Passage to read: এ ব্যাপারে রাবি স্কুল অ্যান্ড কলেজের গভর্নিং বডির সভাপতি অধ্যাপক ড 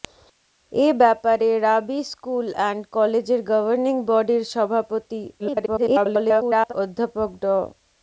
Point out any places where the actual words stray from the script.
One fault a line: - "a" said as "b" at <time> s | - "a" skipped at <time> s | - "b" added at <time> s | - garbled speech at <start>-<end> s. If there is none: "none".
- garbled speech at 5.4-6.7 s